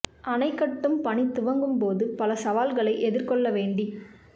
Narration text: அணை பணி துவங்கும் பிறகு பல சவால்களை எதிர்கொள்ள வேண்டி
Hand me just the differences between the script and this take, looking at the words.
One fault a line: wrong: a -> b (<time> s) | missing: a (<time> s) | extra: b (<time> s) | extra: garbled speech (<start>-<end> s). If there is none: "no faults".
extra: கட்டும் (0.5 s)
wrong: பிறகு -> போது (1.8 s)